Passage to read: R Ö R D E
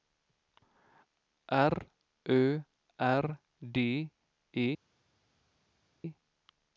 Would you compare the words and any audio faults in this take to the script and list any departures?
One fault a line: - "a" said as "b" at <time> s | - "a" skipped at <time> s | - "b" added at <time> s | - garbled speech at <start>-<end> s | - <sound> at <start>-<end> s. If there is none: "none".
none